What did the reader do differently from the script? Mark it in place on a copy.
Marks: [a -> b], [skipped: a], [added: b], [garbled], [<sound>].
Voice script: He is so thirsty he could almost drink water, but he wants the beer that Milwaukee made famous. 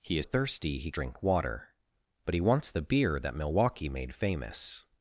He is [skipped: so] thirsty he [skipped: could almost] drink water, but he wants the beer that Milwaukee made famous.